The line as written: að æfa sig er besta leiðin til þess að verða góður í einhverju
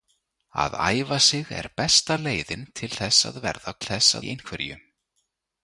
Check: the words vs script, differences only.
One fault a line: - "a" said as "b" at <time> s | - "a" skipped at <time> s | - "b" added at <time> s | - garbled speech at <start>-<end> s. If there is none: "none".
- "góður" said as "þess" at 3.8 s